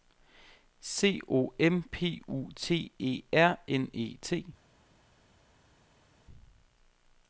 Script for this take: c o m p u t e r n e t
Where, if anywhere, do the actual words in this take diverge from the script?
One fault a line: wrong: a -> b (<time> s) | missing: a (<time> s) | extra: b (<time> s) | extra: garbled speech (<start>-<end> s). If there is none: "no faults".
no faults